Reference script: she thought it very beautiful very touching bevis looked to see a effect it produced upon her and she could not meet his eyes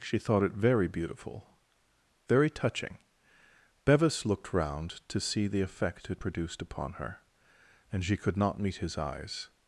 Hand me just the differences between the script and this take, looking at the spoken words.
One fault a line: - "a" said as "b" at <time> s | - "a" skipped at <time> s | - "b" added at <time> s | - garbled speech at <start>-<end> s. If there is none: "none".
- "round" added at 4.5 s
- "a" said as "the" at 5.5 s